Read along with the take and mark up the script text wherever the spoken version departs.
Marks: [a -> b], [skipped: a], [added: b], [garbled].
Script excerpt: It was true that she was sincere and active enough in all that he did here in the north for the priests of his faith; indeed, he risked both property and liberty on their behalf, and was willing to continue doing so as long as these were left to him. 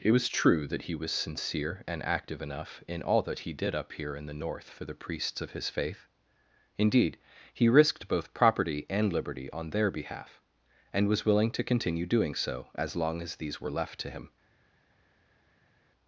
It was true that [she -> he] was sincere and active enough in all that he did [added: up] here in the north for the priests of his faith; indeed, he risked both property and liberty on their behalf, and was willing to continue doing so as long as these were left to him.